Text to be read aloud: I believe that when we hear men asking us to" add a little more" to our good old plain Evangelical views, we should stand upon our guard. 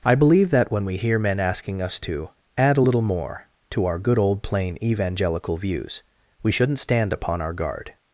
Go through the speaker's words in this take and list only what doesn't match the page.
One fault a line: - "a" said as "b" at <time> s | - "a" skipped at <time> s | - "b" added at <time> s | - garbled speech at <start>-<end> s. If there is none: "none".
- "should" said as "shouldn't" at 6.5 s